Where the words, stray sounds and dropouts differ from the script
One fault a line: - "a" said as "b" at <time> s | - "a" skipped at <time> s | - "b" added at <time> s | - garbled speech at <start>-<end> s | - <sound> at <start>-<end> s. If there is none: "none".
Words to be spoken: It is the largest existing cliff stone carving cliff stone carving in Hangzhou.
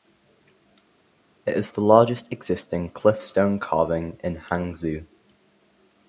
- "cliff stone carving" skipped at 4.2 s